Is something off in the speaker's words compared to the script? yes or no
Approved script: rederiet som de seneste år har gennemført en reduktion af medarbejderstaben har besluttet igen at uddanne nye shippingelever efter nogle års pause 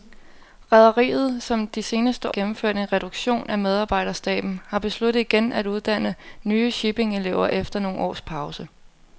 yes